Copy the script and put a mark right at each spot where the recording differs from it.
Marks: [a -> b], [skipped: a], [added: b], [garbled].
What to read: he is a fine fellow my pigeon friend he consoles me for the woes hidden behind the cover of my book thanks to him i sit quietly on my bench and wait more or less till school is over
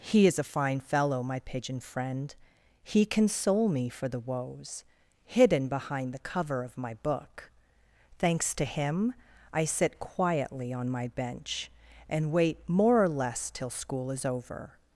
he is a fine fellow my pigeon friend he [consoles -> console] me for the woes hidden behind the cover of my book thanks to him i sit quietly on my bench and wait more or less till school is over